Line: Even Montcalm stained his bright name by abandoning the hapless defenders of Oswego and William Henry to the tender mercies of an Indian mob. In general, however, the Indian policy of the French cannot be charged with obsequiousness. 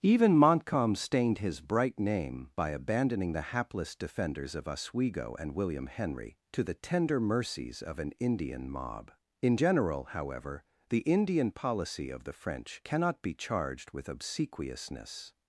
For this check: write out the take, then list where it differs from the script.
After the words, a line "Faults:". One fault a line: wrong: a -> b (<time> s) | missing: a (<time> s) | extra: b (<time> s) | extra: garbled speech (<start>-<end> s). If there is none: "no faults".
Even Montcalm stained his bright name by abandoning the hapless defenders of Oswego and William Henry to the tender mercies of an Indian mob. In general, however, the Indian policy of the French cannot be charged with obsequiousness.
Faults:
no faults